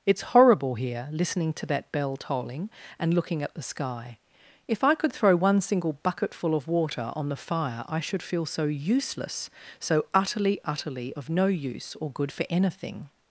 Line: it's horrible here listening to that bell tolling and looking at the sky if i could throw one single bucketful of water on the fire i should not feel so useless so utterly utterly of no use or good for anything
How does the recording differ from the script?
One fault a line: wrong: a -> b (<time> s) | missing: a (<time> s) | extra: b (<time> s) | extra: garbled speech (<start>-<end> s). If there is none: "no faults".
missing: not (8.2 s)